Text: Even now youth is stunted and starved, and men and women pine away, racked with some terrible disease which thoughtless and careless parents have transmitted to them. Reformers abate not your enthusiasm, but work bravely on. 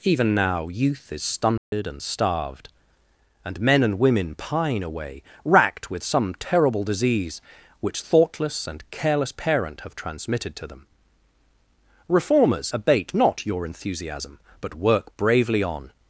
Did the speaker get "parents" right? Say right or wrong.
wrong